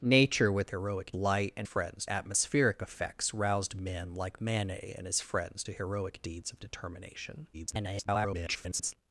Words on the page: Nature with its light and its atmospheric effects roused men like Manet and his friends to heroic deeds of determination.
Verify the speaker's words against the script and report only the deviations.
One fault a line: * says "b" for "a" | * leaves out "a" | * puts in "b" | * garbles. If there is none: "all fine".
* says "heroic" for "its"
* says "friends" for "its"
* garbles